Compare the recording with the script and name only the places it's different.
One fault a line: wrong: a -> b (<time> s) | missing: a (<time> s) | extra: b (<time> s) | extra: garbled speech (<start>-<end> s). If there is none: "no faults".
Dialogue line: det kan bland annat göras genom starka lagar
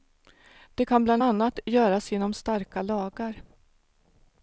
no faults